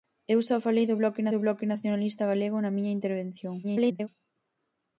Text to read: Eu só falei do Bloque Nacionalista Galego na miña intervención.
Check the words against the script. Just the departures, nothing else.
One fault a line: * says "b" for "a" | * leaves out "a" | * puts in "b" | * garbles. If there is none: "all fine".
* puts in "do Bloque"
* garbles